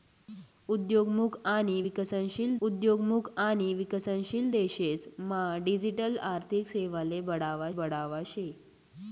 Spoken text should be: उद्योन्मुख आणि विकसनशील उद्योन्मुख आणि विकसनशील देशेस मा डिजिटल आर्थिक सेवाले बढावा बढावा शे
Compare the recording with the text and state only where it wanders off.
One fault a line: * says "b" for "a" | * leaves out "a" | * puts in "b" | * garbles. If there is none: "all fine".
all fine